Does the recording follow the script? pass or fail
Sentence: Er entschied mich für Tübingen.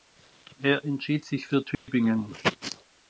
fail